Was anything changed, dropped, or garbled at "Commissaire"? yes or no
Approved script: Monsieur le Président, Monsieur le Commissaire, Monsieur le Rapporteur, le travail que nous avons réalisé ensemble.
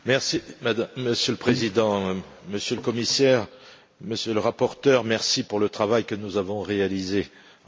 no